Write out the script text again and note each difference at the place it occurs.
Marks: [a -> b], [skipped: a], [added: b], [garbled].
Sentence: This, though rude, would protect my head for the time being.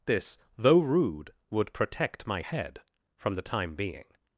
This, though rude, would protect my head [for -> from] the time being.